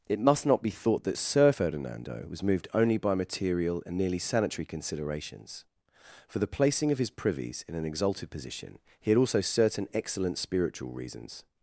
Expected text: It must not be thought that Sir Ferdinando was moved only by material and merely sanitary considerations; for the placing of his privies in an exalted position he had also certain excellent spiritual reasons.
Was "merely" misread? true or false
true